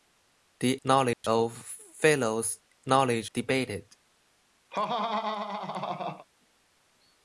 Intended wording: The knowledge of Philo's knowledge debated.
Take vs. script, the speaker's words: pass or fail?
pass